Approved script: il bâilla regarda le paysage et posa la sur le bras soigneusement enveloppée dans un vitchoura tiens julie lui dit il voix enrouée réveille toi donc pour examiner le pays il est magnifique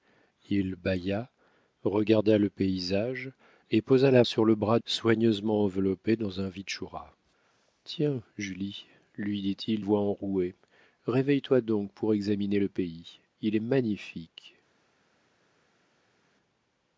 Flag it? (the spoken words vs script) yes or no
no